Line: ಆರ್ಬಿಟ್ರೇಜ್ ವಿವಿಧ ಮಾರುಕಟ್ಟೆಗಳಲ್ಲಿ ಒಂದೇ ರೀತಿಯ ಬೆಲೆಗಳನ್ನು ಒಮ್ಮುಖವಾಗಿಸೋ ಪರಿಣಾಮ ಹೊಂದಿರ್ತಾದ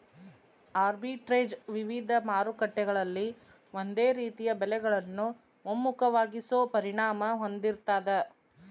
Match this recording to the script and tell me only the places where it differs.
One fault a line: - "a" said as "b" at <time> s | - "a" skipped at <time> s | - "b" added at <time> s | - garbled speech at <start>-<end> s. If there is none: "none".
none